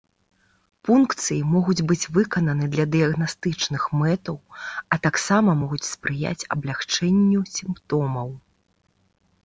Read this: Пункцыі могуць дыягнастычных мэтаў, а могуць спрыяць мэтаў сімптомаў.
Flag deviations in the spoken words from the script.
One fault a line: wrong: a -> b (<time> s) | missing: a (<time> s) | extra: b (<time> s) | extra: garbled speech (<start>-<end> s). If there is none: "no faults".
extra: быць выкананы для (1.9 s)
extra: таксама (5.0 s)
wrong: мэтаў -> аблягчэнню (6.6 s)